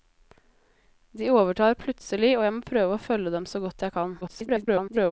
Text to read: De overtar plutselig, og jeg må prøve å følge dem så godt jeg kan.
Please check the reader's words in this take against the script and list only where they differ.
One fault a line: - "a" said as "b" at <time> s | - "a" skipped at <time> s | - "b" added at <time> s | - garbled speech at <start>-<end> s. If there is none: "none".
- garbled speech at 4.2-5.1 s